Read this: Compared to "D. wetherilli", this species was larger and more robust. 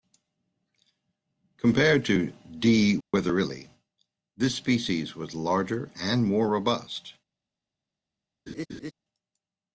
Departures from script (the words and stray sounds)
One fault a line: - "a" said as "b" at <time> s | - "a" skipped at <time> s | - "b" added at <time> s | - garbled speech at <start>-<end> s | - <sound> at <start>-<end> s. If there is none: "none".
- dropout at 3.0-3.1 s
- laugh at 8.5-8.9 s